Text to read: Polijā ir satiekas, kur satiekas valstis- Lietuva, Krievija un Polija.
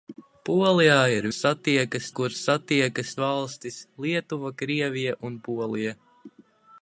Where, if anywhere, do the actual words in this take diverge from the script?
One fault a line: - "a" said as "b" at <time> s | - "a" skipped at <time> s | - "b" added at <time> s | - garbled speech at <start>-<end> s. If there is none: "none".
none